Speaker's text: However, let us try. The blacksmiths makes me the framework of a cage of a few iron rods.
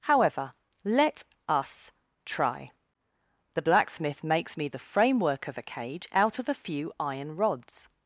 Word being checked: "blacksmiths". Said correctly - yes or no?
no